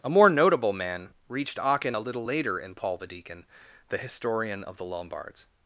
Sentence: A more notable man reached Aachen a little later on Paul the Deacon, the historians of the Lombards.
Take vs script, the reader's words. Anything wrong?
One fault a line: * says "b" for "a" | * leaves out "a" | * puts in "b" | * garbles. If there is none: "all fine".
* says "in" for "on"
* says "historian" for "historians"